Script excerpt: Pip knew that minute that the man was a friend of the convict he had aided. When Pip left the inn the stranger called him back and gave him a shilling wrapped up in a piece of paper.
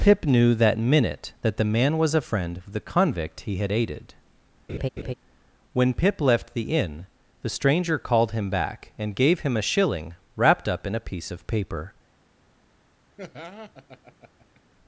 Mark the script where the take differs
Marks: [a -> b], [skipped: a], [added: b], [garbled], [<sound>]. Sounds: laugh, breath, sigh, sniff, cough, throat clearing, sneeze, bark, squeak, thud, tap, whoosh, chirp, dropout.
Pip knew that minute that the man was a friend of the convict he had aided. [laugh] When Pip left the inn the stranger called him back and gave him a shilling wrapped up in a piece of paper. [laugh]